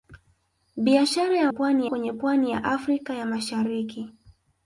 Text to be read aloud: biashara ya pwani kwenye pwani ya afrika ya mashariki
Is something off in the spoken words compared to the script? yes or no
no